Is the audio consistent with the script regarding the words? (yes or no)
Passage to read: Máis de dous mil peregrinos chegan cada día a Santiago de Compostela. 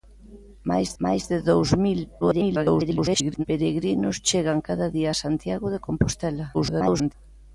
no